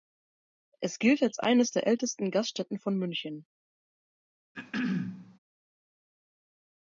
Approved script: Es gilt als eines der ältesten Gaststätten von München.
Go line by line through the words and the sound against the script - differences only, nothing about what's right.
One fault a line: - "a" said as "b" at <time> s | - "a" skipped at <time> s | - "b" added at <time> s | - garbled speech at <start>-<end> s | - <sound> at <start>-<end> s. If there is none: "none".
- throat clearing at 4.5-5.4 s